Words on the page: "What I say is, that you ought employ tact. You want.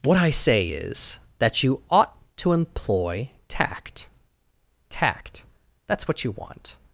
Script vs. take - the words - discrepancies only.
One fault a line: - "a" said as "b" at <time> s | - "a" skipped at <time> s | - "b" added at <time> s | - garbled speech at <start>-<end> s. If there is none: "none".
- "to" added at 2.4 s
- "Tact that's what" added at 4.9 s